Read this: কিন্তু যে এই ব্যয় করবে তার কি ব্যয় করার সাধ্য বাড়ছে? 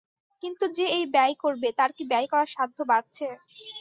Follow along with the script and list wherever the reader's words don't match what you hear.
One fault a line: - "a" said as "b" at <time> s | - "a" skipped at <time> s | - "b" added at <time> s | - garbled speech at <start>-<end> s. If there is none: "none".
none